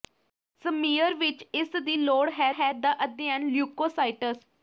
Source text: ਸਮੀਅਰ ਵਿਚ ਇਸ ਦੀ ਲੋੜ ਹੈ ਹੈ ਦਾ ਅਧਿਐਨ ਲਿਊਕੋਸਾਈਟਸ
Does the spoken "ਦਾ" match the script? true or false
true